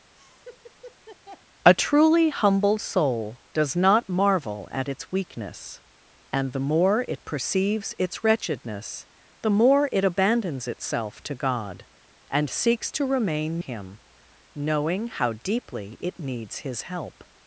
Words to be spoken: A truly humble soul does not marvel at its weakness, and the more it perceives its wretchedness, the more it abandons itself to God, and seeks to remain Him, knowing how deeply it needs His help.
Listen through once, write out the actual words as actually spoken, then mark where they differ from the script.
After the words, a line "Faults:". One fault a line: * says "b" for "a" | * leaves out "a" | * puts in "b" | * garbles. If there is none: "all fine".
A truly humble soul does not marvel at its weakness, and the more it perceives its wretchedness, the more it abandons itself to God, and seeks to remain Him, knowing how deeply it needs His help.
Faults:
all fine